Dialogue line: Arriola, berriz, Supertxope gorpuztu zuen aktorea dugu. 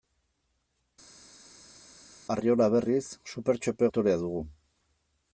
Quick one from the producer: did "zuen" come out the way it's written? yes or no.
no